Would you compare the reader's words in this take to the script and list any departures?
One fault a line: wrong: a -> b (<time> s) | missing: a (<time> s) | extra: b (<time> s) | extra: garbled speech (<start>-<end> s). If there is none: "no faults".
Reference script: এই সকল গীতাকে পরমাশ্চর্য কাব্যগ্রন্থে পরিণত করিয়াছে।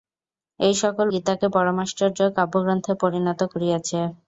no faults